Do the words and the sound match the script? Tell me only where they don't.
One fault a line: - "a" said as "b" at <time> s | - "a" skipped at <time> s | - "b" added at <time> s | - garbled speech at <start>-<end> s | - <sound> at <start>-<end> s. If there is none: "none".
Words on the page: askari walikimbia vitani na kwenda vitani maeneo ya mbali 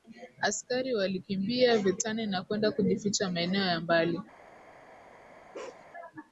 - "vitani" said as "kujificha" at 2.7 s
- bark at 5.5-5.9 s